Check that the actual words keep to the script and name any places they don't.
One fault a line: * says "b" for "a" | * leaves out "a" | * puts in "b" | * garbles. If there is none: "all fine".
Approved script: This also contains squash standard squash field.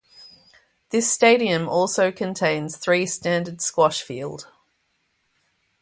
* puts in "stadium"
* says "three" for "squash"